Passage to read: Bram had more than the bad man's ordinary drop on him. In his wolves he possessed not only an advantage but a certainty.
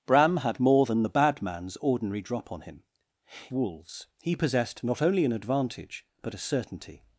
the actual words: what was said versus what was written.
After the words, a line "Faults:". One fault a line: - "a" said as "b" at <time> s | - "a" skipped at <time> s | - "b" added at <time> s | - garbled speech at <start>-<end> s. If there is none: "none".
Bram had more than the bad man's ordinary drop on him. Wolves he possessed not only an advantage but a certainty.
Faults:
- "In his" skipped at 2.8 s